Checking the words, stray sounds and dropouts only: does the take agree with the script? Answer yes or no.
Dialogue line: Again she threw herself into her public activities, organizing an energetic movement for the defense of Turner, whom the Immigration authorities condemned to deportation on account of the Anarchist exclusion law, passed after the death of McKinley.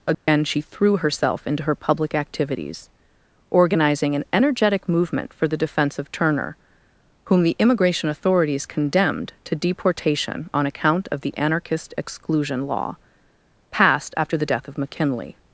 no